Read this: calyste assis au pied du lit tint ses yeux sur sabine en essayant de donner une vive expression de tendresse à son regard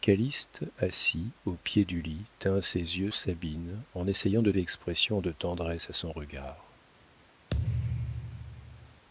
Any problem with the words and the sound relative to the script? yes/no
yes